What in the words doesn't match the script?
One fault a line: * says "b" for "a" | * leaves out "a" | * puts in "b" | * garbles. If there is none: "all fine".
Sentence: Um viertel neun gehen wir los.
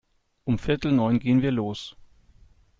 all fine